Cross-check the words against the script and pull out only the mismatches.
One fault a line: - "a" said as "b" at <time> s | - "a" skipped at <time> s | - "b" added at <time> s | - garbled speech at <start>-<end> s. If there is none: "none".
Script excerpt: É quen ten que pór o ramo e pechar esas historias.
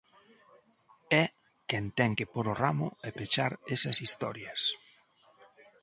none